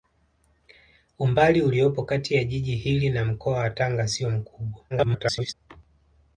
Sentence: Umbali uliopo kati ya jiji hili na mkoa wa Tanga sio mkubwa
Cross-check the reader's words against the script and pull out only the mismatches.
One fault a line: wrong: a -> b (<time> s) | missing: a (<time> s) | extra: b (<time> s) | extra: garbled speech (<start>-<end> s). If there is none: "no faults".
extra: garbled speech (4.9-5.5 s)